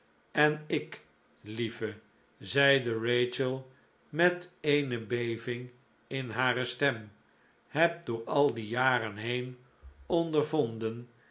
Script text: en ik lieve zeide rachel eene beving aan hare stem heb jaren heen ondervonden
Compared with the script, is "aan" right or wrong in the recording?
wrong